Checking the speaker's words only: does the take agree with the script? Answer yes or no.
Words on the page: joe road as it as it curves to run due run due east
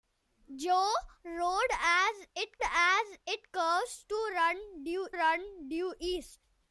yes